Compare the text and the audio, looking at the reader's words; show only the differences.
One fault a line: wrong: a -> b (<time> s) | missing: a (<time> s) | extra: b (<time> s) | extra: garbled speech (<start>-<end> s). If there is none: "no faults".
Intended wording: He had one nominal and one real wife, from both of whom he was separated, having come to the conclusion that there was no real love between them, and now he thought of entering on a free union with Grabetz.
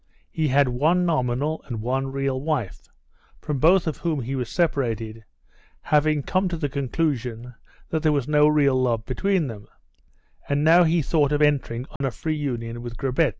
no faults